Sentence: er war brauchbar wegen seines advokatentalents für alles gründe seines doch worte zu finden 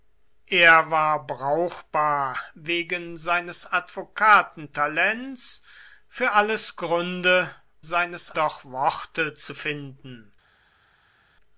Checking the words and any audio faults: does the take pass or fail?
pass